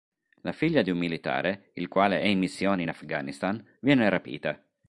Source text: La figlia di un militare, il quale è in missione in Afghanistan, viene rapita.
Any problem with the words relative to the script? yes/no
no